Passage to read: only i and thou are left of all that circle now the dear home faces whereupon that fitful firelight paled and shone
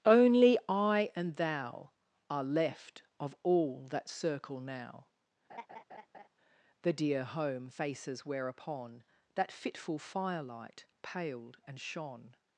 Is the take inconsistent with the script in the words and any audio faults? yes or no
yes